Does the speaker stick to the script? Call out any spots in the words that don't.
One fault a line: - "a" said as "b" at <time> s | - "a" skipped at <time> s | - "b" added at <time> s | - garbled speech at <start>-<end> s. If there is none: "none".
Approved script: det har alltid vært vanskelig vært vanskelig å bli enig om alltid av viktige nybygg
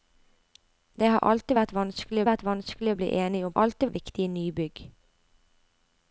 none